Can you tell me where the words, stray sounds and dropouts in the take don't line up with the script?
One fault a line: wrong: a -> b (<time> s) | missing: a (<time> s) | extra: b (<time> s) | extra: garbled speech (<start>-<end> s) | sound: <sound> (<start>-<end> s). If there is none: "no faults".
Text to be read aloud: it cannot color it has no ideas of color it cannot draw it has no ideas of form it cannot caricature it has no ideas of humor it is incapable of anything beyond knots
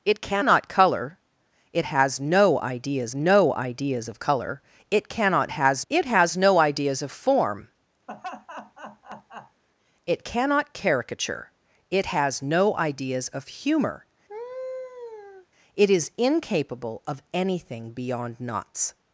extra: no ideas (3.1 s)
wrong: draw -> has (5.5 s)
sound: laugh (8.1-9.6 s)
sound: laugh (14.3-15.5 s)